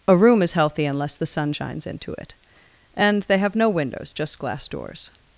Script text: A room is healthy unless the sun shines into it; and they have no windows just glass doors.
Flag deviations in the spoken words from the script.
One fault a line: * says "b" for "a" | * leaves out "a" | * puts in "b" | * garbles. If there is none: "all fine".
all fine